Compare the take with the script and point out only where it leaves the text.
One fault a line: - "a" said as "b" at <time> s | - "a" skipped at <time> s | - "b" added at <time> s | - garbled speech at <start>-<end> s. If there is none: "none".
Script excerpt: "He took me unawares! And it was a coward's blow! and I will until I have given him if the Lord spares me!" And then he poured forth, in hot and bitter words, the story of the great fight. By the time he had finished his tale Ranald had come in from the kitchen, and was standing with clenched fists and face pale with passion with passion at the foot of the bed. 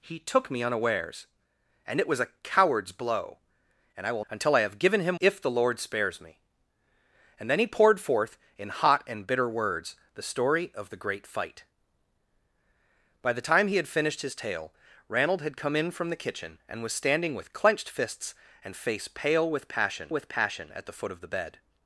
none